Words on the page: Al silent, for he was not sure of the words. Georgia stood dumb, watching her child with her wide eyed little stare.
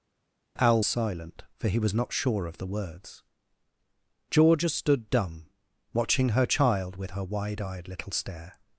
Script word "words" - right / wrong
right